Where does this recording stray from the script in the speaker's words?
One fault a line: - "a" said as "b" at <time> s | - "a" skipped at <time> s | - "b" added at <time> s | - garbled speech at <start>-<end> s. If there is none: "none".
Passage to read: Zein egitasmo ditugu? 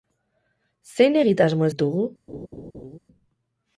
none